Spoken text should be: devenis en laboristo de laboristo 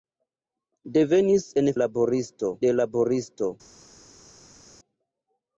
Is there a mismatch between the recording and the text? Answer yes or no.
no